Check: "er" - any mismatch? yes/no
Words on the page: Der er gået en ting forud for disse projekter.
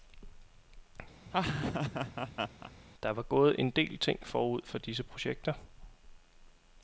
yes